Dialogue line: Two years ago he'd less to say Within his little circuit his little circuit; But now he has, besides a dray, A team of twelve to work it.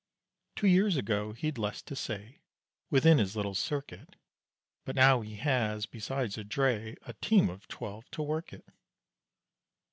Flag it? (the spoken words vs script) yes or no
yes